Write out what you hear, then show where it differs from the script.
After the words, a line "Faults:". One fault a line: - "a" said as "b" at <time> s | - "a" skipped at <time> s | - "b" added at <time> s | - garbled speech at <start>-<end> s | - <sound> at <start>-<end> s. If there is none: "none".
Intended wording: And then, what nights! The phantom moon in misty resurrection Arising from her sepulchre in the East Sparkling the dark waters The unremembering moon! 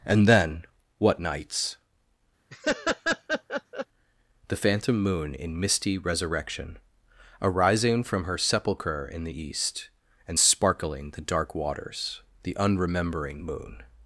And then, what nights! The phantom moon in misty resurrection Arising from her sepulchre in the East And sparkling the dark waters The unremembering moon!
Faults:
- laugh at 2.5-3.9 s
- "And" added at 10.3 s